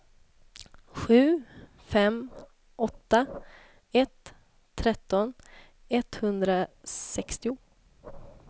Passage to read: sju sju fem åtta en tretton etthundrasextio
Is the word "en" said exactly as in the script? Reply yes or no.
no